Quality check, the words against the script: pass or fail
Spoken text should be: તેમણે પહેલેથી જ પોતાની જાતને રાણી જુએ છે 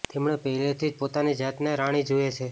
pass